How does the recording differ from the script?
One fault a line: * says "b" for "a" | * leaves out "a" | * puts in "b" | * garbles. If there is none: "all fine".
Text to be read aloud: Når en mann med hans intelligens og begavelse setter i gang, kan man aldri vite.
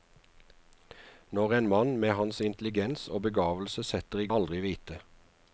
* leaves out "gang kan man"